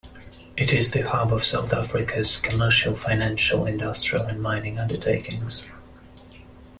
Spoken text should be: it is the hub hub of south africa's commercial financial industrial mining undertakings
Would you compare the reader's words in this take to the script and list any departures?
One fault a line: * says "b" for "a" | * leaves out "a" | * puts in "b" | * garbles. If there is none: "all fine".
* leaves out "hub"
* puts in "and"